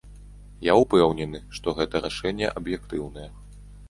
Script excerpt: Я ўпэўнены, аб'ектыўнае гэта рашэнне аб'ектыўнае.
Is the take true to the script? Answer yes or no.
no